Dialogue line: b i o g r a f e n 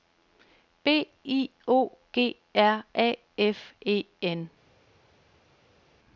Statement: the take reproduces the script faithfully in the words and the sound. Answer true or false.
true